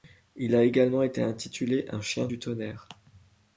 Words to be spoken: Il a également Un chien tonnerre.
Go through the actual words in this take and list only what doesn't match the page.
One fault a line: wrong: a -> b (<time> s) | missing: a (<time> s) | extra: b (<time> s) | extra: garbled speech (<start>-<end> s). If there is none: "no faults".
extra: été intitulé (1.0 s)
extra: du (2.2 s)